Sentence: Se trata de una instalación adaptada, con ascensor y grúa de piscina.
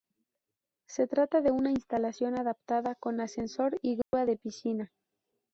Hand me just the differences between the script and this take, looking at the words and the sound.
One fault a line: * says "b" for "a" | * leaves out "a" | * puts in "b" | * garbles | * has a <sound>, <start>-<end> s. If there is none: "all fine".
* has a dropout, 4.0-4.1 s